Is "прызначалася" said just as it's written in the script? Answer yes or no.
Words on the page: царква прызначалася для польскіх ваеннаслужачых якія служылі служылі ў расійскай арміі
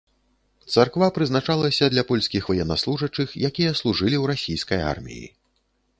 yes